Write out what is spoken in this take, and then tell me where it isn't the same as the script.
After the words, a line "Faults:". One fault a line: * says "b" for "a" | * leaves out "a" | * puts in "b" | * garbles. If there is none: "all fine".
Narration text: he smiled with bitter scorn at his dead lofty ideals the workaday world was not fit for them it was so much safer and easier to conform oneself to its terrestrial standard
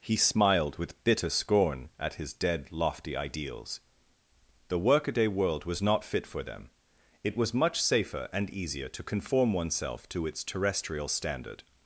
he smiled with bitter scorn at his dead lofty ideals the workaday world was not fit for them it was much safer and easier to conform oneself to its terrestrial standard
Faults:
* leaves out "so"